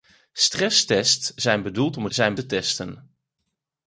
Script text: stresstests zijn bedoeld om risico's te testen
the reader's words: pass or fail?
fail